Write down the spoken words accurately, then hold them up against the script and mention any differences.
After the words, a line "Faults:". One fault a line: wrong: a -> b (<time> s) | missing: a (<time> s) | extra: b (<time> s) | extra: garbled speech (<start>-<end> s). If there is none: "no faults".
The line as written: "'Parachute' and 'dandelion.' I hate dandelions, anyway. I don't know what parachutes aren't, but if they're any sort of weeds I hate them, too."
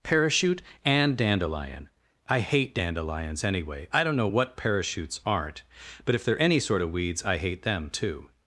"'Parachute' and 'dandelion.' I hate dandelions, anyway. I don't know what parachutes aren't, but if they're any sort of weeds I hate them, too."
Faults:
no faults